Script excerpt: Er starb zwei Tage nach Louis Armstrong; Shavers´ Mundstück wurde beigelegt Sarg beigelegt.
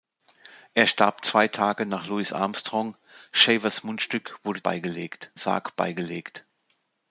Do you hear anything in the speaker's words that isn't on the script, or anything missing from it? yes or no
no